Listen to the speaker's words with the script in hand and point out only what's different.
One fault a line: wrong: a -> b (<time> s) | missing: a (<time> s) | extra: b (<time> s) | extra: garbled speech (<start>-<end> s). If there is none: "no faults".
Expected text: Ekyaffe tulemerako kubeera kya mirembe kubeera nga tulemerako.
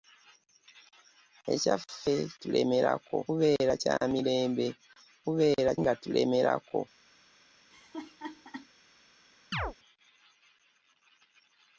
no faults